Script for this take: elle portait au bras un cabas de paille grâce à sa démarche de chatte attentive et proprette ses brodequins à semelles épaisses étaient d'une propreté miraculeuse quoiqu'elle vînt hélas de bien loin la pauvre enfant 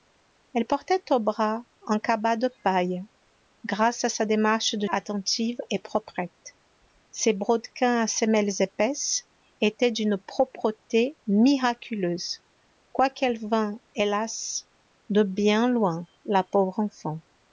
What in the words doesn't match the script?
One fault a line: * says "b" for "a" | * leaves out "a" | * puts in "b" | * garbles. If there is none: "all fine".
* leaves out "chatte"